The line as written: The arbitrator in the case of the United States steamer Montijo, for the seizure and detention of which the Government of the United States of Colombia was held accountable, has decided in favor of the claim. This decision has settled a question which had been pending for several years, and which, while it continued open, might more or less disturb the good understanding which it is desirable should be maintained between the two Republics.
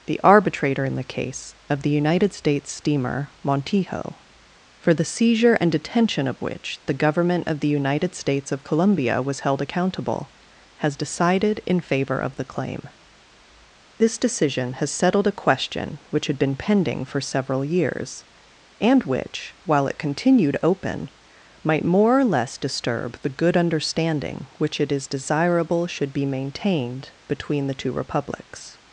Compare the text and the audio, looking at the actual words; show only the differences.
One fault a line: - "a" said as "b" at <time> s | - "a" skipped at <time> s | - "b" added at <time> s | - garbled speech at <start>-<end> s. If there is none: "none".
none